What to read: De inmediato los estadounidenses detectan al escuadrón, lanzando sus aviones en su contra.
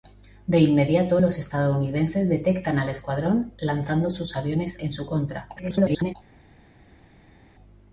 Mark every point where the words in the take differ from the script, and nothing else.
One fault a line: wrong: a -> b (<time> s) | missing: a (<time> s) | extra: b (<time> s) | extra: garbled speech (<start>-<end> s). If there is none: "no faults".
extra: garbled speech (5.6-6.1 s)